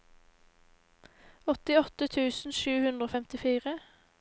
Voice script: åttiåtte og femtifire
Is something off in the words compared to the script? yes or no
yes